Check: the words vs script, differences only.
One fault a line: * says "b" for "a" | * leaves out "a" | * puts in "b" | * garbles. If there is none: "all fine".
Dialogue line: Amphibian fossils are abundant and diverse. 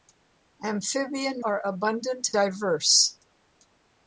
* leaves out "fossils"
* leaves out "and"